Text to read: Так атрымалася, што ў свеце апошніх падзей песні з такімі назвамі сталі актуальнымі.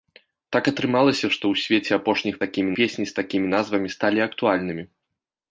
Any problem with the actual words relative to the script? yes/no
yes